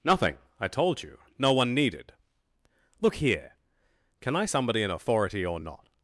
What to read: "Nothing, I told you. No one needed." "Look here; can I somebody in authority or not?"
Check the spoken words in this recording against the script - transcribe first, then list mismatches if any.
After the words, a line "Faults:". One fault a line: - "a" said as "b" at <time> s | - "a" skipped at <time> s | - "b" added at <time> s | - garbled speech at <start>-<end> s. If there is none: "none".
"Nothing, I told you. No one needed." "Look here; can I somebody in authority or not?"
Faults:
none